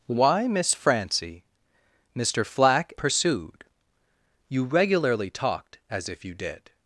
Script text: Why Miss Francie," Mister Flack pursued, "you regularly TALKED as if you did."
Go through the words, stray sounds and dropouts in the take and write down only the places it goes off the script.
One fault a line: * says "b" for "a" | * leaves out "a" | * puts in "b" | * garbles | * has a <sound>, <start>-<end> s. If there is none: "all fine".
all fine